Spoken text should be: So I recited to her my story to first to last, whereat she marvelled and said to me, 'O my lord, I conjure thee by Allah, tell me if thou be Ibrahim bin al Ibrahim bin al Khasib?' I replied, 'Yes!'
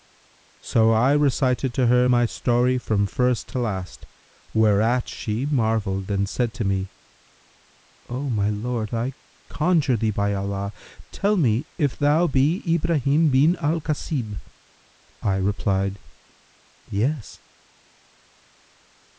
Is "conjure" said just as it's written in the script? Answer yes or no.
yes